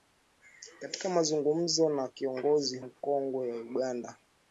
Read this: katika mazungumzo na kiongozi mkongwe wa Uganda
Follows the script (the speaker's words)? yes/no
yes